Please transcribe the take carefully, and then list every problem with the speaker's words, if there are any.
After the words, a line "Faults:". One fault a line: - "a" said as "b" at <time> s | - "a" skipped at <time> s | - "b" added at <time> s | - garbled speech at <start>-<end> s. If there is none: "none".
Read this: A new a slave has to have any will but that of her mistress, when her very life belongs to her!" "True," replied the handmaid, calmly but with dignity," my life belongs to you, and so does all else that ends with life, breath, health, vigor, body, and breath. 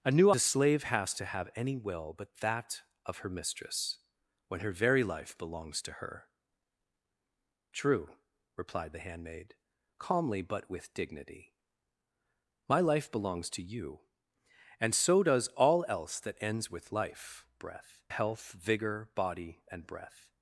A new a slave has to have any will but that of her mistress, when her very life belongs to her!" "True," replied the handmaid, calmly but with dignity," my life belongs to you, and so does all else that ends with life, breath, health, vigor, body, and breath.
Faults:
none